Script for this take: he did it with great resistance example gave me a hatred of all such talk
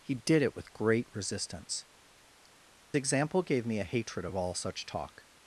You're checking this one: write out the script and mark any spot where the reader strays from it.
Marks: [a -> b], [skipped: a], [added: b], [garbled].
he did it with great resistance example gave me a hatred of all such talk